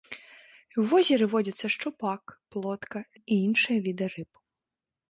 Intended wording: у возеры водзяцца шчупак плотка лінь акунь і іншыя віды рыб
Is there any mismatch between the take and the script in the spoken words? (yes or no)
yes